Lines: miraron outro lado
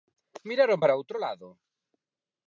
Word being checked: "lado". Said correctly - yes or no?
yes